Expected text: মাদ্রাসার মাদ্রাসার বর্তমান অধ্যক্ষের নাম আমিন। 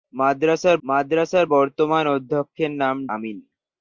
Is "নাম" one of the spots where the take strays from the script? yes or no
no